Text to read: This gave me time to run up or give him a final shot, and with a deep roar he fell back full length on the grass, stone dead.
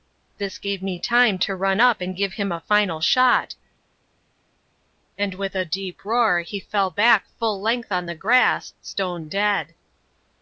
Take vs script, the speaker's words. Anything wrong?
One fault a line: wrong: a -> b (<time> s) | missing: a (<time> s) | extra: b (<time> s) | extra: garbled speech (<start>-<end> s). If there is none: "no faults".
wrong: or -> and (2.0 s)